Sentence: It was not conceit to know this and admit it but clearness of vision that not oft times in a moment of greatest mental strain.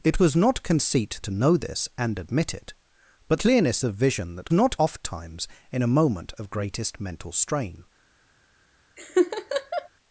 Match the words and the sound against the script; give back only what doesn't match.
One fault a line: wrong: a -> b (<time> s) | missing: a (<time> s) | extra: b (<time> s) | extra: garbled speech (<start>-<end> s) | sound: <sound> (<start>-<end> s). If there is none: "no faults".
sound: laugh (9.0-9.9 s)